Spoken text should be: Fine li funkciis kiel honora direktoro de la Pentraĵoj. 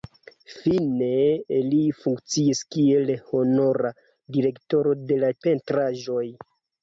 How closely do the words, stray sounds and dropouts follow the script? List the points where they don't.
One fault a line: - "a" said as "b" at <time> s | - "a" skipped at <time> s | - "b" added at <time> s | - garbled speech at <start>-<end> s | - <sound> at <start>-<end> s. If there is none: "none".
none